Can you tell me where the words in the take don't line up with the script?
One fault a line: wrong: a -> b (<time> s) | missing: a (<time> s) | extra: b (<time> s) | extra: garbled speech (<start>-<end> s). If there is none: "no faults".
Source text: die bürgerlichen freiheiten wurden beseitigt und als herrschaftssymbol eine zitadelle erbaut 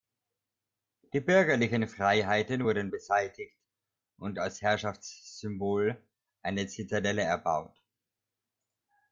no faults